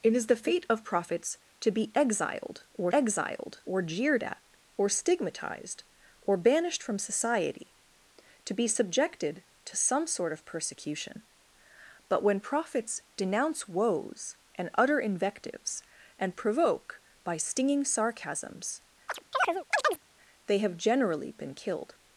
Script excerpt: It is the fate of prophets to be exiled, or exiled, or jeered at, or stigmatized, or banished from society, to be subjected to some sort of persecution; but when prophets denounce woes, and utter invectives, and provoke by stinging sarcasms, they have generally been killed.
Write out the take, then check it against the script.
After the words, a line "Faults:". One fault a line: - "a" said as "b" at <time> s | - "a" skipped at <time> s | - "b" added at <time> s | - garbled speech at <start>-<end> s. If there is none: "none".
It is the fate of prophets to be exiled, or exiled, or jeered at, or stigmatized, or banished from society, to be subjected to some sort of persecution; but when prophets denounce woes, and utter invectives, and provoke by stinging sarcasms, they have generally been killed.
Faults:
none